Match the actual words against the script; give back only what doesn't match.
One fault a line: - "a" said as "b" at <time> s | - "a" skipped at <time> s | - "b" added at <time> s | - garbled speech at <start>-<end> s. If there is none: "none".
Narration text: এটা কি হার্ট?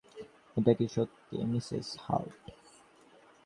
- "সত্যি মিসেস" added at 0.9 s